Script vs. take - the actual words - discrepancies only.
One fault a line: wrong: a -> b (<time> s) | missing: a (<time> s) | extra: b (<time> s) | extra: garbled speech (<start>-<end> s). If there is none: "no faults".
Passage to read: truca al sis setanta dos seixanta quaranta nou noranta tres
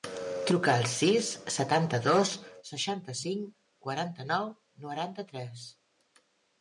extra: cinc (3.2 s)